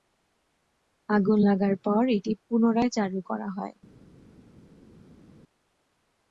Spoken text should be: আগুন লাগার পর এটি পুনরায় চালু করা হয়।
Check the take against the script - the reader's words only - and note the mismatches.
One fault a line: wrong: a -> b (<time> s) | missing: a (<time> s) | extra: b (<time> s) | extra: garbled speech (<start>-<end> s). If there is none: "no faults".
no faults